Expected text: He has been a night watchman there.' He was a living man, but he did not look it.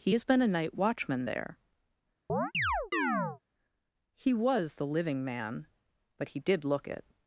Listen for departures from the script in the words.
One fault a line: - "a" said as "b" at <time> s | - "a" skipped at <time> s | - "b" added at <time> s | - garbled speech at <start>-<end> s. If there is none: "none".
- "a" said as "the" at 4.7 s
- "not" skipped at 6.6 s